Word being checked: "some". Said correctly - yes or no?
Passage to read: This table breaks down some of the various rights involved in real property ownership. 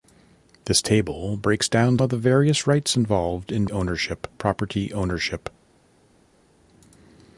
no